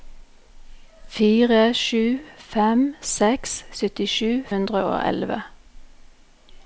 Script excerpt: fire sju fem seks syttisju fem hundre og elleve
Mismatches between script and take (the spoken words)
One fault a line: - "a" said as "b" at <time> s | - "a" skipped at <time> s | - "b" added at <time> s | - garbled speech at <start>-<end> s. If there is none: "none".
- "fem" skipped at 4.3 s